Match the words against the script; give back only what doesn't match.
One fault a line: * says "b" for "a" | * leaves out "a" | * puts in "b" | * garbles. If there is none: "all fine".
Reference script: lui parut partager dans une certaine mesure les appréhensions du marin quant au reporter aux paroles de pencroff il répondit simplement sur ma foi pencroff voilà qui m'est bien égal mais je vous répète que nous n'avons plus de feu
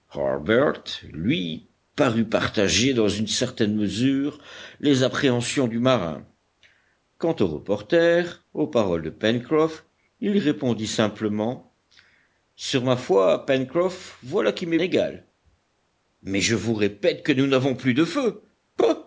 * leaves out "bien"